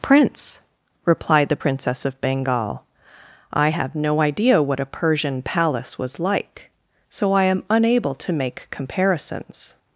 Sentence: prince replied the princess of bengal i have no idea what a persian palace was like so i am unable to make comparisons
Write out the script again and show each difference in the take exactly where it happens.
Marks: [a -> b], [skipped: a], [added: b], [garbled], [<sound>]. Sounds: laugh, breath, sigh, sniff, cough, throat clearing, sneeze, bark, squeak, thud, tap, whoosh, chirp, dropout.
prince replied the princess of bengal i have no idea what a persian palace was like so i am unable to make comparisons